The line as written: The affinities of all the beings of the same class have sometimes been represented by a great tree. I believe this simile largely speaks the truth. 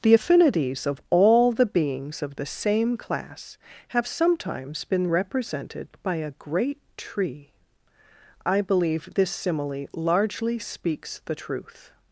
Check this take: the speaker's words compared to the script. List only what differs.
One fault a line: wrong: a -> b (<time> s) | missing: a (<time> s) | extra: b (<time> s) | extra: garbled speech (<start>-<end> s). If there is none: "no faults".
no faults